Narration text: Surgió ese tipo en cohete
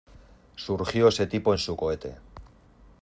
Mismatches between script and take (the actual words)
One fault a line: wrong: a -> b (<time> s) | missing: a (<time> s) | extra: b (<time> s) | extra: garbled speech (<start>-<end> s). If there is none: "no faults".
extra: su (1.6 s)